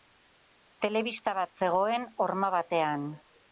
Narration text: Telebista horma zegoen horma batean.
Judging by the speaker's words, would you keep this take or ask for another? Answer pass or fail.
fail